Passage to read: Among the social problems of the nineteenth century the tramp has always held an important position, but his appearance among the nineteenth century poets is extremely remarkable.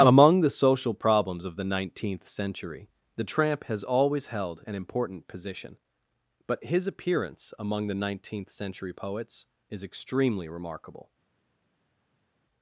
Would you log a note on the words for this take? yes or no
no